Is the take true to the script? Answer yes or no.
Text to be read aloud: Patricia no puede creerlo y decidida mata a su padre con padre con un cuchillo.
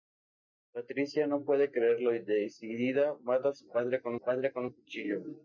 yes